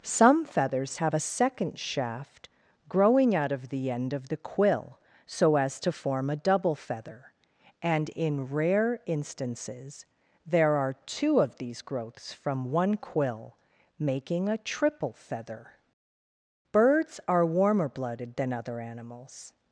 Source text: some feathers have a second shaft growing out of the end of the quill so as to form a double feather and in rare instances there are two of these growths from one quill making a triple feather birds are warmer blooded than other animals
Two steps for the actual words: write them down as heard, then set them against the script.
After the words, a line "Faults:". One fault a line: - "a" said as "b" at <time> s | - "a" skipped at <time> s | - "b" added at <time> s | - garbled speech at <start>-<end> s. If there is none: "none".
some feathers have a second shaft growing out of the end of the quill so as to form a double feather and in rare instances there are two of these growths from one quill making a triple feather birds are warmer blooded than other animals
Faults:
none